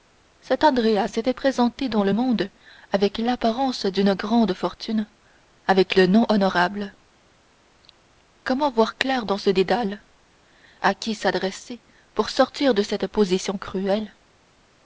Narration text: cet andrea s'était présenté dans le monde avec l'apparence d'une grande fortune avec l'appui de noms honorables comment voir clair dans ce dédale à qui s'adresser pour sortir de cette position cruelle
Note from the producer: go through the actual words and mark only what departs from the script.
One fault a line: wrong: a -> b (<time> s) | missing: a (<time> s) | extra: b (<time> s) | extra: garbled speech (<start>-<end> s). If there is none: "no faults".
missing: l'appui (6.0 s)